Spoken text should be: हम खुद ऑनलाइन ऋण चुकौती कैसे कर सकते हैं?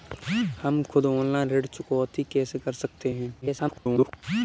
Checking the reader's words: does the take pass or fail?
fail